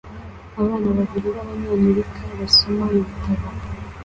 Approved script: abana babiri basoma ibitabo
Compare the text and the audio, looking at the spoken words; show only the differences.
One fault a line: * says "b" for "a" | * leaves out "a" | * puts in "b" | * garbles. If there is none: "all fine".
* puts in "b'abanyamerika"